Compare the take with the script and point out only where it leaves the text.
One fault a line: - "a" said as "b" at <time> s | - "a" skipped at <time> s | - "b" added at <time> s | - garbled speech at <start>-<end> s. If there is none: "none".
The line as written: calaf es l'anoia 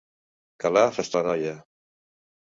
none